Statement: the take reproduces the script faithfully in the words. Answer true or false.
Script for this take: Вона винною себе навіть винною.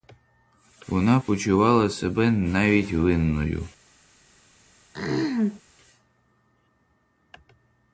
false